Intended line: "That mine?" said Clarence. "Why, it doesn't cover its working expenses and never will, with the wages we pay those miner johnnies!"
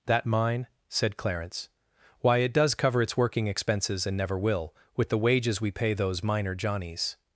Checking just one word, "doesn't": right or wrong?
wrong